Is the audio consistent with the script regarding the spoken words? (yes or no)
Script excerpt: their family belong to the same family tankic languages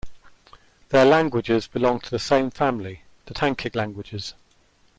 no